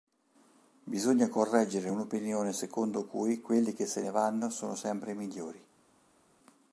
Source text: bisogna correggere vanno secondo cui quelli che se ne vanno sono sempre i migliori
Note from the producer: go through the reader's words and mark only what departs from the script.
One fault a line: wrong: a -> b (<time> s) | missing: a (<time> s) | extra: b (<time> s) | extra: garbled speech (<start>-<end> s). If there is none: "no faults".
wrong: vanno -> un'opinione (1.9 s)